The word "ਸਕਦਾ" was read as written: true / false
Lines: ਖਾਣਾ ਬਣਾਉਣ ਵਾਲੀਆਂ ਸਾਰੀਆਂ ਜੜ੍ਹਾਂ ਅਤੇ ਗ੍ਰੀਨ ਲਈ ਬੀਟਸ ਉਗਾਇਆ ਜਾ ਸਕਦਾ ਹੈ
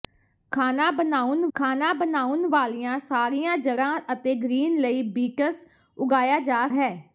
false